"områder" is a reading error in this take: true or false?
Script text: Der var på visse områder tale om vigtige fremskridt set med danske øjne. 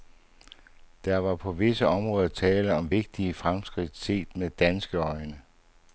false